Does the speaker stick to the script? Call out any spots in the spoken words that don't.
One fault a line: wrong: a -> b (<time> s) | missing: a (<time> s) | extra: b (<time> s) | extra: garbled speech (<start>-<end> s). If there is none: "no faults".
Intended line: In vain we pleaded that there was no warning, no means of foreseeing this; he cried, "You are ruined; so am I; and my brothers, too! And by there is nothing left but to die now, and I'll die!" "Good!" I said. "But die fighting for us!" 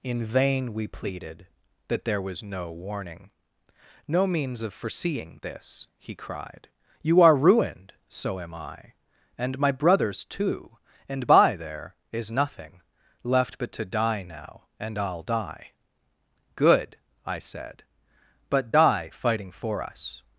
no faults